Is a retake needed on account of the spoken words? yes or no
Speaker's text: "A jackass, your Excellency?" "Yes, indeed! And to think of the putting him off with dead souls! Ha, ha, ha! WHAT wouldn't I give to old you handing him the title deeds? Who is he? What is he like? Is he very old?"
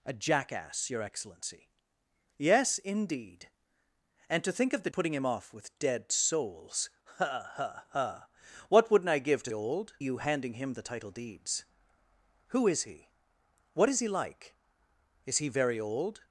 no